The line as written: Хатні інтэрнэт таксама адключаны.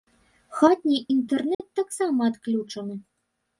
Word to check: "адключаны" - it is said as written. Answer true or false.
true